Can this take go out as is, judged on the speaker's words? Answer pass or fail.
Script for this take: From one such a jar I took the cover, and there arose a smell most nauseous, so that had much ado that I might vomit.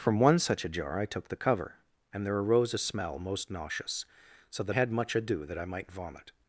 pass